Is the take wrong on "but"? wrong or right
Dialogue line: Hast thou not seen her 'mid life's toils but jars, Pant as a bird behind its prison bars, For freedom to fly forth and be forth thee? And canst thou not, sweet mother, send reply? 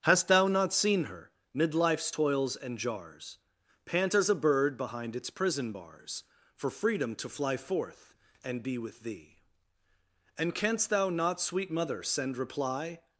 wrong